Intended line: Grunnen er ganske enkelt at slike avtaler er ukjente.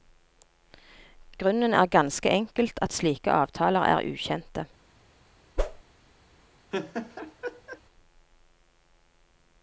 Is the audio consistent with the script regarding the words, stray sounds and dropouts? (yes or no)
no